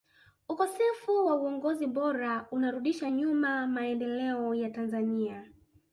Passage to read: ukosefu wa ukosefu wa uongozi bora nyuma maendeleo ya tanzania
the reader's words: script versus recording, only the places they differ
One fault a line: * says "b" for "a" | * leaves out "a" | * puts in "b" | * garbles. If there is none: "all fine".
* leaves out "ukosefu wa"
* puts in "unarudisha"